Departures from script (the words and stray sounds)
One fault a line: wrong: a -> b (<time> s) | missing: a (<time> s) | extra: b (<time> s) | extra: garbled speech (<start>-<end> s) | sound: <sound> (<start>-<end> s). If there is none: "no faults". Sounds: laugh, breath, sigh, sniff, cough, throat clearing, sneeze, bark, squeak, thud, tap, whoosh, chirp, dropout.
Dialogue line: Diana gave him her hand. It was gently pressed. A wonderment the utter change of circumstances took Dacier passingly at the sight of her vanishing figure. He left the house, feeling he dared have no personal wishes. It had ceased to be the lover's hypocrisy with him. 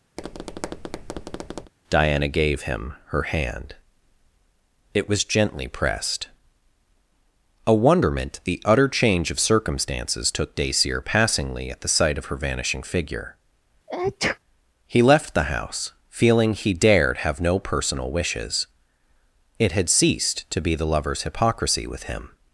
sound: tap (0.2-1.7 s)
sound: sneeze (13.9-14.4 s)